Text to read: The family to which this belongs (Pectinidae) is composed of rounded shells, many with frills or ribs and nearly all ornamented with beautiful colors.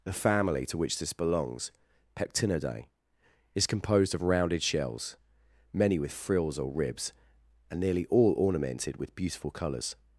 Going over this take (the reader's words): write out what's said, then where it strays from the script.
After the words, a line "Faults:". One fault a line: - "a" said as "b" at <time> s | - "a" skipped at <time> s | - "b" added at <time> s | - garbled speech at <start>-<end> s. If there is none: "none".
The family to which this belongs (Pectinidae) is composed of rounded shells, many with frills or ribs and nearly all ornamented with beautiful colors.
Faults:
none